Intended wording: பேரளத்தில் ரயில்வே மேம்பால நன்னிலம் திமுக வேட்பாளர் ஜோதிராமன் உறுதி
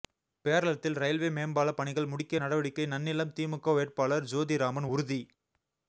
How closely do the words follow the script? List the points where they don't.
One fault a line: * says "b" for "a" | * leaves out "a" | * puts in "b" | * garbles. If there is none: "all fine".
* puts in "பணிகள் முடிக்க நடவடிக்கை"